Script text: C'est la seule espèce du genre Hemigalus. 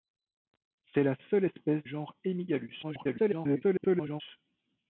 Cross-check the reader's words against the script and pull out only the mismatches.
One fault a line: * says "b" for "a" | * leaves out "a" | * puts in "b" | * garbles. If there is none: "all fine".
* leaves out "du"
* garbles